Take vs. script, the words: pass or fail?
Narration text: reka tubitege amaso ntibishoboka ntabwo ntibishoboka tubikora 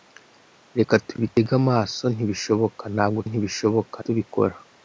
pass